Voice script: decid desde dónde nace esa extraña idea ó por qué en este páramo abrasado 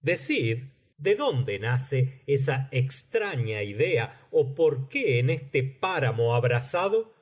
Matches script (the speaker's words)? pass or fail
fail